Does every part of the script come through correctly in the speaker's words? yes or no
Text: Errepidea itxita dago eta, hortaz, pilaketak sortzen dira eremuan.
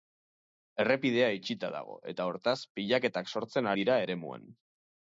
yes